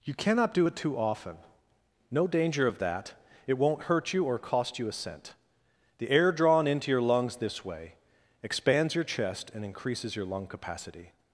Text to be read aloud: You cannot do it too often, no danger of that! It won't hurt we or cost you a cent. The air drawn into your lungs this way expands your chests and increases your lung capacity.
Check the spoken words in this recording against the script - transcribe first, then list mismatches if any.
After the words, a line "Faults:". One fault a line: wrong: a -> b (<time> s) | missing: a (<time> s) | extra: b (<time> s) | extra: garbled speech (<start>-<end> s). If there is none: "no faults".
You cannot do it too often, no danger of that! It won't hurt you or cost you a cent. The air drawn into your lungs this way expands your chest and increases your lung capacity.
Faults:
wrong: we -> you (4.1 s)
wrong: chests -> chest (9.0 s)